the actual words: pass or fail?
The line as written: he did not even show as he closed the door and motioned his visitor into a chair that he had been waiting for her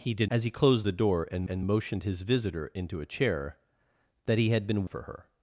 fail